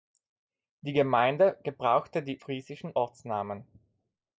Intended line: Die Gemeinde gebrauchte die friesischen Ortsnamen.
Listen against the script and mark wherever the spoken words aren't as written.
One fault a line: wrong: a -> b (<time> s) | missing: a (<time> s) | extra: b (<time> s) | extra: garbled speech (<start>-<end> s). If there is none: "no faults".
no faults